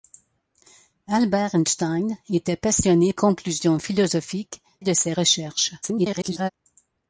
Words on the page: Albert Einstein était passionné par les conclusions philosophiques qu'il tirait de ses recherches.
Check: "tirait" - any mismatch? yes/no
yes